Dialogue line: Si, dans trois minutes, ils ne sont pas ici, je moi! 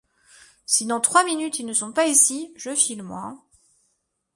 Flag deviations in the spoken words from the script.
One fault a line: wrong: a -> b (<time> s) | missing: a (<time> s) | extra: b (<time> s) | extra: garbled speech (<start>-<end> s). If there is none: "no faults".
extra: file (2.7 s)